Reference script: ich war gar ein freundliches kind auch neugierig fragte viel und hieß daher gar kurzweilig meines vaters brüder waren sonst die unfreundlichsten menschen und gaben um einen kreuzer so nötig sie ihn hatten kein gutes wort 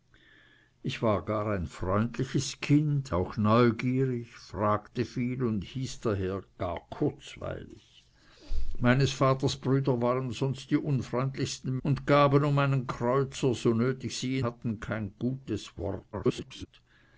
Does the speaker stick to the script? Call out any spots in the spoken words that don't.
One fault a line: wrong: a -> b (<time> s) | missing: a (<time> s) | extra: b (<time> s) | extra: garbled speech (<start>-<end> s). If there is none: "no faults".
missing: menschen (11.8 s)
missing: ihn (14.4 s)
extra: garbled speech (16.1-16.7 s)